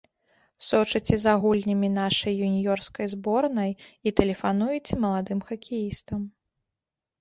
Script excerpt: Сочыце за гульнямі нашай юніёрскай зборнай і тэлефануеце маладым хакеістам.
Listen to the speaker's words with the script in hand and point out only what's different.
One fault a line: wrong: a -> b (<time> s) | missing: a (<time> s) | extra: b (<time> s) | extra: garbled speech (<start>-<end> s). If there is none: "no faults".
no faults